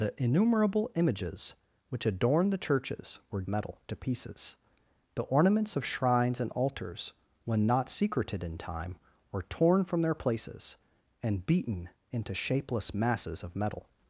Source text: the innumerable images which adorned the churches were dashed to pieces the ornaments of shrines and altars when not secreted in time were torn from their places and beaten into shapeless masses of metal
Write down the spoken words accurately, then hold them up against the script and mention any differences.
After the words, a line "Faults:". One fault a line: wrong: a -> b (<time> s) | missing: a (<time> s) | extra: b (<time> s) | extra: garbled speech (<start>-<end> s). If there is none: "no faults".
the innumerable images which adorned the churches were metal to pieces the ornaments of shrines and altars when not secreted in time were torn from their places and beaten into shapeless masses of metal
Faults:
wrong: dashed -> metal (3.5 s)